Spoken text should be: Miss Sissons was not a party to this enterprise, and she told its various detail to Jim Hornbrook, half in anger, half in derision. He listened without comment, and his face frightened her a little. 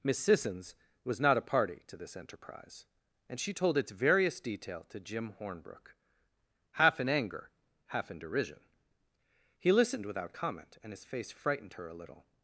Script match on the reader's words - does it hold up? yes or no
yes